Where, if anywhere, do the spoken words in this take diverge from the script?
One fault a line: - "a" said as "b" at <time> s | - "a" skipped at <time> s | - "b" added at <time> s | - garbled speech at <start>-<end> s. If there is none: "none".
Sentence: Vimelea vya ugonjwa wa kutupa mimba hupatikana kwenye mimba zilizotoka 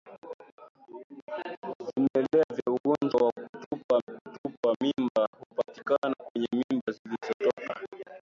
- "kutupa" added at 4.0 s